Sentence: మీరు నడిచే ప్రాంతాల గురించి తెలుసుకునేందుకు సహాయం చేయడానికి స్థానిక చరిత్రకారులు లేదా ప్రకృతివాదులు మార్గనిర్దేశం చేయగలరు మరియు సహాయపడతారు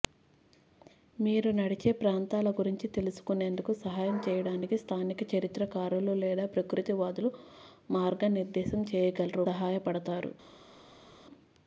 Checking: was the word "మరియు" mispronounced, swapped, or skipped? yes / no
yes